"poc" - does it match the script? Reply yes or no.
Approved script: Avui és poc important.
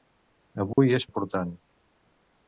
no